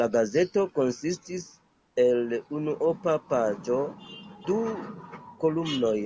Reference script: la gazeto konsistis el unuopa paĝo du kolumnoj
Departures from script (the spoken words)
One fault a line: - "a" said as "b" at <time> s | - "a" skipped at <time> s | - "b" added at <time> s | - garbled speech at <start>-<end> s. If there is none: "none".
none